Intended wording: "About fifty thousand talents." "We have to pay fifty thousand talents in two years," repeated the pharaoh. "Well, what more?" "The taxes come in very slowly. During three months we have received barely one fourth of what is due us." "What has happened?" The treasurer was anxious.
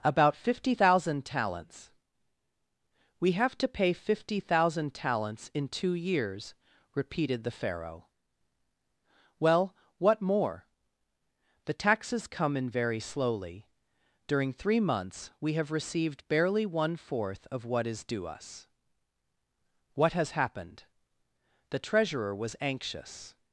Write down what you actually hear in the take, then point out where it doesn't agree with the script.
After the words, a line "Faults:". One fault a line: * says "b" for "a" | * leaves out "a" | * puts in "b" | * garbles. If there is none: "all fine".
"About fifty thousand talents." "We have to pay fifty thousand talents in two years," repeated the pharaoh. "Well, what more?" "The taxes come in very slowly. During three months we have received barely one fourth of what is due us." "What has happened?" The treasurer was anxious.
Faults:
all fine